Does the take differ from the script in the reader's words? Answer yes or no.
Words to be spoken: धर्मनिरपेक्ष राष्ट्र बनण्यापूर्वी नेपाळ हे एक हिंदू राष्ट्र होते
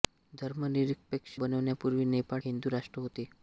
yes